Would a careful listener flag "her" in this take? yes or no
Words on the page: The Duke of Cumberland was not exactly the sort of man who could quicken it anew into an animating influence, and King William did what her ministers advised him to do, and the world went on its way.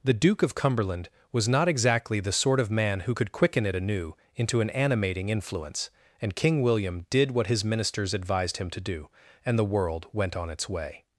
yes